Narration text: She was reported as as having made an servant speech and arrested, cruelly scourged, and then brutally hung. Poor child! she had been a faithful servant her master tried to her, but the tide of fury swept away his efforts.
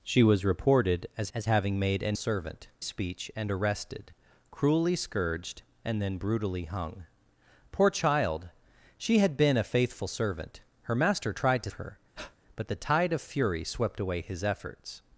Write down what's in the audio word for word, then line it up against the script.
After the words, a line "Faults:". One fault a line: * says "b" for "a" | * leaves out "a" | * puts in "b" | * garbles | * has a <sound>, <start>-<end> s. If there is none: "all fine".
She was reported as as having made an servant speech and arrested, cruelly scourged, and then brutally hung. Poor child! she had been a faithful servant her master tried to her, but the tide of fury swept away his efforts.
Faults:
* has a breath, 12.2-12.4 s